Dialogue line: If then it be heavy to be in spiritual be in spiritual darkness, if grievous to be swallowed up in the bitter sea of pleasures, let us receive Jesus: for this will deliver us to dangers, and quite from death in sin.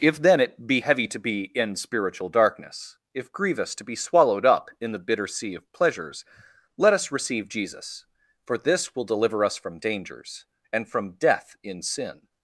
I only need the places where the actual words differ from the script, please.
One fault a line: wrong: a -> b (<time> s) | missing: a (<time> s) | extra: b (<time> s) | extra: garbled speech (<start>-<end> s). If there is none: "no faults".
missing: be in spiritual (2.3 s)
wrong: to -> from (9.5 s)
missing: quite (10.9 s)